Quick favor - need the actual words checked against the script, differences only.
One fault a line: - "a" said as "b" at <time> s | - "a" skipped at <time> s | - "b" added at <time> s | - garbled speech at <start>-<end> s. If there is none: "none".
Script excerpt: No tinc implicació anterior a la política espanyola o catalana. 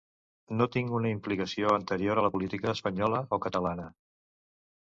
- "una" added at 1.0 s